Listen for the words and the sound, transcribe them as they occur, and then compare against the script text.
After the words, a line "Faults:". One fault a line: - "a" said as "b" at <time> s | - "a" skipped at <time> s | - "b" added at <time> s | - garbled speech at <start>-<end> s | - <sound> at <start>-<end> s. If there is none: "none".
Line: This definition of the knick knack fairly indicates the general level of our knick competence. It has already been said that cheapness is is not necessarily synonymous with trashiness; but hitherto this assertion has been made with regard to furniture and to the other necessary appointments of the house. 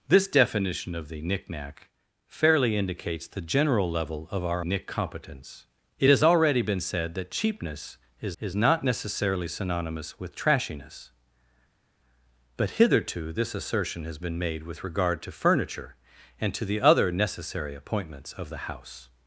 This definition of the knick knack fairly indicates the general level of our knick competence. It has already been said that cheapness is is not necessarily synonymous with trashiness; but hitherto this assertion has been made with regard to furniture and to the other necessary appointments of the house.
Faults:
none